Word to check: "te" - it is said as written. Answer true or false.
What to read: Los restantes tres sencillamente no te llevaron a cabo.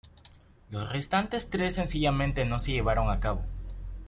false